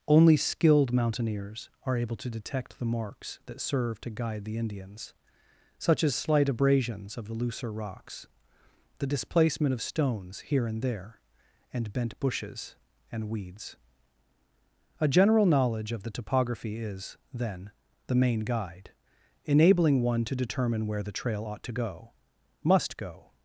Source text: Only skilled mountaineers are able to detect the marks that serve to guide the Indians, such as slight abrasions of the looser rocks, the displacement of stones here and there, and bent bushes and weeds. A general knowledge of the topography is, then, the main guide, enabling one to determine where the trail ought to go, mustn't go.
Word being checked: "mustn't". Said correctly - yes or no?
no